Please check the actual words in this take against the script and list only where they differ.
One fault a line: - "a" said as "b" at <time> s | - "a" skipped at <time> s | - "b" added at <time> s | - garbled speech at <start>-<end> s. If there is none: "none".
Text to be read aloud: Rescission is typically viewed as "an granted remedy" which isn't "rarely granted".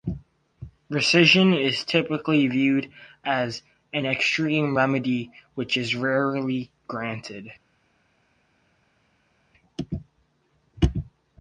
- "granted" said as "extreme" at 4.1 s
- "isn't" said as "is" at 5.8 s